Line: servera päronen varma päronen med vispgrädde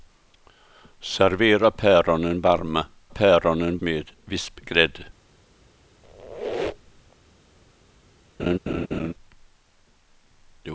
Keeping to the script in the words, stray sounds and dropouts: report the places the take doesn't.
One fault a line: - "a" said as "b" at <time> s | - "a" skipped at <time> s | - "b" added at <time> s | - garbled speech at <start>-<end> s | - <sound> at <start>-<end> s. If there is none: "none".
- squeak at 6.0-7.2 s
- laugh at 8.4-9.1 s